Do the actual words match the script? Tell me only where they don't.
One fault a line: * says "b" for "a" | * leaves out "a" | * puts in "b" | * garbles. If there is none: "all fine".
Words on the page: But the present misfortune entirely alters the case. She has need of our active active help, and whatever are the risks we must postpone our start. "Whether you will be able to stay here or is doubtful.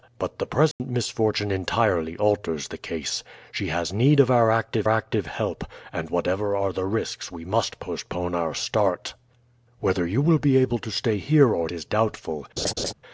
all fine